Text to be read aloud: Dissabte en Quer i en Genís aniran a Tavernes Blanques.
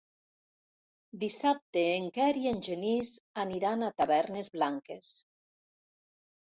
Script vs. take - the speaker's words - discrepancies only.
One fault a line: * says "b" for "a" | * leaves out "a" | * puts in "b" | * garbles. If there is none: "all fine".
all fine